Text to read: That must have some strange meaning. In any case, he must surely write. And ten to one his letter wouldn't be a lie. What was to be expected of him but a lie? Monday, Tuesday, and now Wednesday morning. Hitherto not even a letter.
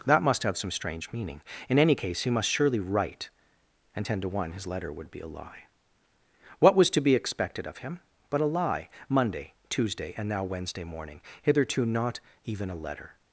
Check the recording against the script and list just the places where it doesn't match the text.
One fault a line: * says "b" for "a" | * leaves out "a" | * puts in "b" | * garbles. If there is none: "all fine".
* says "would" for "wouldn't"